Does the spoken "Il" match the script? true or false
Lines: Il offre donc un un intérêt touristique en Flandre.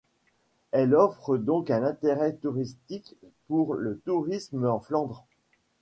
false